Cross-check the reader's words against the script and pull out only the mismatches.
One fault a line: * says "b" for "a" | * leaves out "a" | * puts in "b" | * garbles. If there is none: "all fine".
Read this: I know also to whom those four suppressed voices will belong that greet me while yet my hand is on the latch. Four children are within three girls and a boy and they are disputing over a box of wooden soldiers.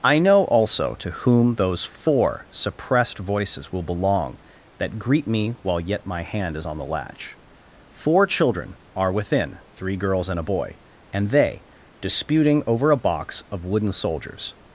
* leaves out "are"